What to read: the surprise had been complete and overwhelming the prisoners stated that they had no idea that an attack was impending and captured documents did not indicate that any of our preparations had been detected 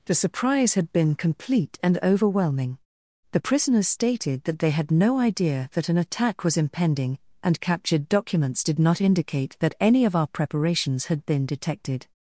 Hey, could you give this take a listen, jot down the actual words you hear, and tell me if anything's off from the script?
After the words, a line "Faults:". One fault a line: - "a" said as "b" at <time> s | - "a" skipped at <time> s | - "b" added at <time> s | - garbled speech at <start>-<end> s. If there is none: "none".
the surprise had been complete and overwhelming the prisoners stated that they had no idea that an attack was impending and captured documents did not indicate that any of our preparations had been detected
Faults:
none